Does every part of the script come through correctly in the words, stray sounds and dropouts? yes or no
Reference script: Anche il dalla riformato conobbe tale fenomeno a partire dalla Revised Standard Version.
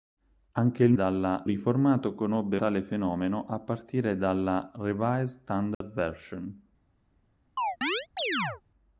no